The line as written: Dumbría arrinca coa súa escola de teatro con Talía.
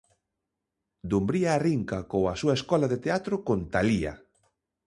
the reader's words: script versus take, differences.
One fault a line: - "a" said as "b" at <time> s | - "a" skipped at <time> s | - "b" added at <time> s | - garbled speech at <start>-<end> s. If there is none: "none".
none